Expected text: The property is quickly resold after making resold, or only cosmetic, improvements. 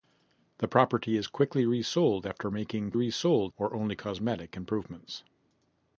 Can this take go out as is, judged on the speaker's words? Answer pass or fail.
pass